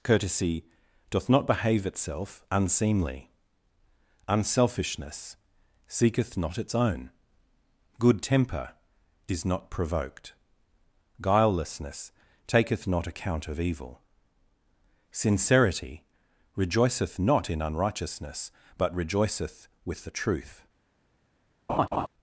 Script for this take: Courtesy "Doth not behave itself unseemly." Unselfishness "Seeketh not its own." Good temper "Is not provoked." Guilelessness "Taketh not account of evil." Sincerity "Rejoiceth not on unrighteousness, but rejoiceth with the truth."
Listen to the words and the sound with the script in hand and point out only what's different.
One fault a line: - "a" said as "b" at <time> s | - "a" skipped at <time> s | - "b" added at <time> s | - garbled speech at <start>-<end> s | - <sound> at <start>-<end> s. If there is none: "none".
- "on" said as "in" at 17.5 s
- laugh at 21.7-22.1 s